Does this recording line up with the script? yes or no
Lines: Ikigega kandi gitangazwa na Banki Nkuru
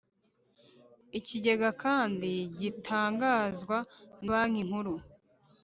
no